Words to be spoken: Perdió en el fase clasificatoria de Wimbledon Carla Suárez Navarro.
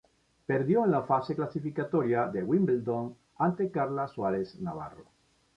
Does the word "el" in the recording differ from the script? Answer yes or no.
yes